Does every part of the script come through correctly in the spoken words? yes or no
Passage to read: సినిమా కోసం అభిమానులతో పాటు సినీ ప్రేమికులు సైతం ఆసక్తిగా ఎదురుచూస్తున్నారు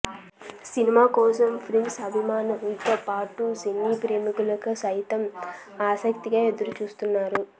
no